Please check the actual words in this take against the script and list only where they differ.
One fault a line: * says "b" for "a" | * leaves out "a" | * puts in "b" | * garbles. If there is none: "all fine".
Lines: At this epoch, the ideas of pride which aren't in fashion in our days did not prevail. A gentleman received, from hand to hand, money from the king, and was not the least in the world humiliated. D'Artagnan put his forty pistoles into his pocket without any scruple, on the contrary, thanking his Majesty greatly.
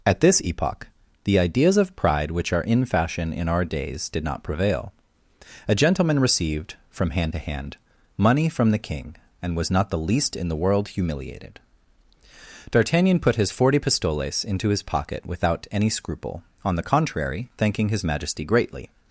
* says "are" for "aren't"